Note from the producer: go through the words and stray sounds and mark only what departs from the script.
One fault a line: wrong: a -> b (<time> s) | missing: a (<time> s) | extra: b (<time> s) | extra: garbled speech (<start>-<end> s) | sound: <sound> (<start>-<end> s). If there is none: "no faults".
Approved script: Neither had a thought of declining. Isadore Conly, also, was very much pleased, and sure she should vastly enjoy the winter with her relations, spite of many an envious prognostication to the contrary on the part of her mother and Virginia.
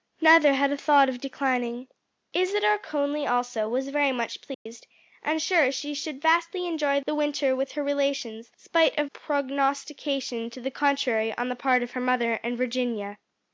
sound: dropout (4.5-4.7 s)
missing: many an envious (9.1 s)